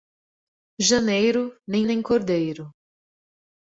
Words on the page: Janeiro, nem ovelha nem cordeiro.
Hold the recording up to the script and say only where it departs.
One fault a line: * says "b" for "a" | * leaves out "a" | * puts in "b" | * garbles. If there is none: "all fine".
* leaves out "ovelha"